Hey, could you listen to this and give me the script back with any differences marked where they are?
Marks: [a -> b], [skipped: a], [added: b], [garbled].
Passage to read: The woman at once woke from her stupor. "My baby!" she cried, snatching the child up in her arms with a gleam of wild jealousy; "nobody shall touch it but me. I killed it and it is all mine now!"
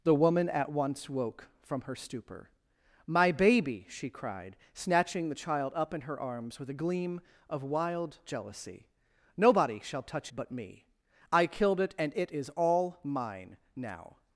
The woman at once woke from her stupor. "My baby!" she cried, snatching the child up in her arms with a gleam of wild jealousy; "nobody shall touch [skipped: it] but me. I killed it and it is all mine now!"